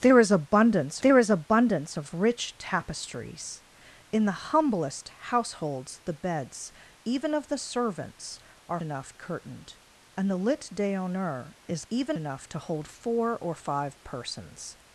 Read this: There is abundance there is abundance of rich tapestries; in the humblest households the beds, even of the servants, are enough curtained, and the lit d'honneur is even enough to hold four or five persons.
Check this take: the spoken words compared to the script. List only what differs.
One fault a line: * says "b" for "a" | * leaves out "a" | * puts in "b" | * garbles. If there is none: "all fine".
all fine